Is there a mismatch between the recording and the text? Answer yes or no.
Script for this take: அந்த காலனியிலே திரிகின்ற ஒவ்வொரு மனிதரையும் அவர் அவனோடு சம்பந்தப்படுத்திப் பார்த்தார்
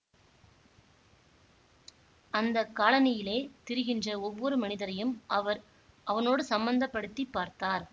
no